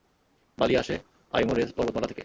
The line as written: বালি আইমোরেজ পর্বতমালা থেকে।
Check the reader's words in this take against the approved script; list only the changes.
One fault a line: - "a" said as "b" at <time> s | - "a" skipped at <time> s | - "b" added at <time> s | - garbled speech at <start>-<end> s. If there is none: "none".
- "আসে" added at 0.8 s